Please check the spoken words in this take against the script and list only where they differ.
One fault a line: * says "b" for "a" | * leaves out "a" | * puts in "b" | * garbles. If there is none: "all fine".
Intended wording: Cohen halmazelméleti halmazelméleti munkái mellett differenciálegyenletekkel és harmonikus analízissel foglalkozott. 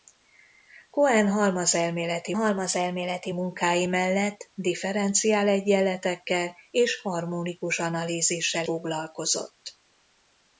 all fine